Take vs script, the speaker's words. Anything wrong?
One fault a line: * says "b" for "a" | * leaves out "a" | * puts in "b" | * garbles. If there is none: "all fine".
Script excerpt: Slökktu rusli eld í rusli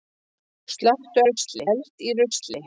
all fine